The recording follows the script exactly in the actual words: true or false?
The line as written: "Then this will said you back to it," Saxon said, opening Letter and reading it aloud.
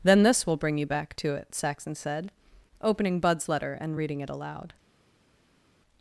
false